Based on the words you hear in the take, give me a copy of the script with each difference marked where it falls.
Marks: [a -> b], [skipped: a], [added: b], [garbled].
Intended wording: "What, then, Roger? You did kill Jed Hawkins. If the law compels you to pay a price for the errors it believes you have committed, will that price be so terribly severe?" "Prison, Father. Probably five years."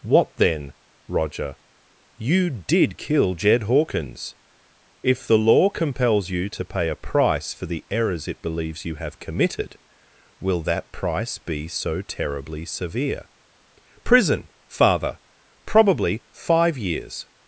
"What, then, Roger? You did kill Jed Hawkins. If the law compels you to pay a price for the errors it believes you have committed, will that price be so terribly severe?" "Prison, Father. Probably five years."